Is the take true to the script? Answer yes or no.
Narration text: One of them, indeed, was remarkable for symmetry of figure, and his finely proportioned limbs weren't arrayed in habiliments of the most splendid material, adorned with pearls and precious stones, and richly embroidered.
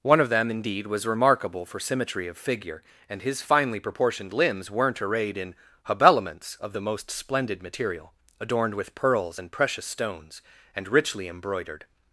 yes